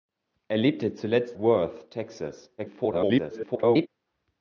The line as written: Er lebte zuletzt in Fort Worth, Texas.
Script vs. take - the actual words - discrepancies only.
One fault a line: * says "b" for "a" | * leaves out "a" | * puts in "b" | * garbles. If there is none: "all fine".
* leaves out "in Fort"
* garbles